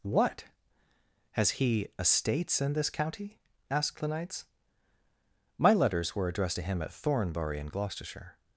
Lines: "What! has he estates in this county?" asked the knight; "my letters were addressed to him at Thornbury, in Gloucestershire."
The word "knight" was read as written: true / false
false